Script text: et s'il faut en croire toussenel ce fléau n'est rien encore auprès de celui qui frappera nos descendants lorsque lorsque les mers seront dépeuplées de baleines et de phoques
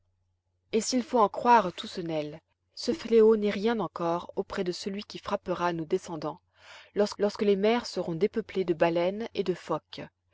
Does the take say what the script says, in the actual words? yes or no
yes